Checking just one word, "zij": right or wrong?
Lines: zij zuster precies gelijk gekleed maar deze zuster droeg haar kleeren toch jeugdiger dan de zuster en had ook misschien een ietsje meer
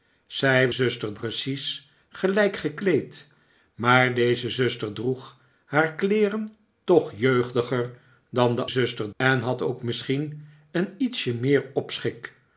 right